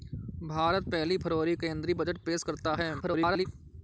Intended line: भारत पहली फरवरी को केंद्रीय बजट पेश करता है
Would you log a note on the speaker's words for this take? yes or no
yes